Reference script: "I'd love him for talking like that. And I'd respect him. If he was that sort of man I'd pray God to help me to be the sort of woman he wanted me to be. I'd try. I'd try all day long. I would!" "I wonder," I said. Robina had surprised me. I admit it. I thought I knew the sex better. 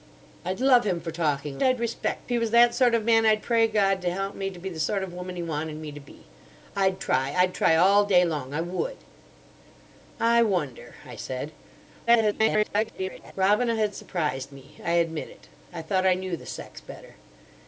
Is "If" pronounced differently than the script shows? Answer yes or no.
yes